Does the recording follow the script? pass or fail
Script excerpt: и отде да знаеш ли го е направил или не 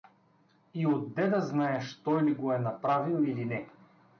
fail